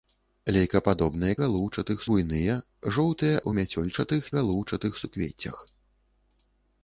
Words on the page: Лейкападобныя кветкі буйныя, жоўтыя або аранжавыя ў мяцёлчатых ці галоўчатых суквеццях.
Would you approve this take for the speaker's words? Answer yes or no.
no